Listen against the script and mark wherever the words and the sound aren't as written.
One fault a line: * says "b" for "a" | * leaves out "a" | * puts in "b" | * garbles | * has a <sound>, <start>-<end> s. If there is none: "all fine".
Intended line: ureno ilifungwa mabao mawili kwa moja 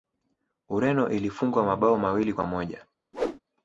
* has a whoosh, 3.1-3.4 s